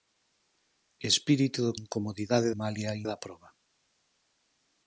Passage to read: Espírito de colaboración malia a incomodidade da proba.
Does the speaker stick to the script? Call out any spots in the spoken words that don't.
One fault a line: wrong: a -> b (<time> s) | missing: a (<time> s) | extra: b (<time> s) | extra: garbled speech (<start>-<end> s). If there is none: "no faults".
wrong: colaboración -> incomodidade (1.8 s)
missing: incomodidade (3.0 s)